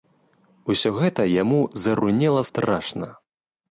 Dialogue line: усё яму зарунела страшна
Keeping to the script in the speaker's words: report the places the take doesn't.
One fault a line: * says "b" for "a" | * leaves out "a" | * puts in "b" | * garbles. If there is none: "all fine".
* puts in "гэта"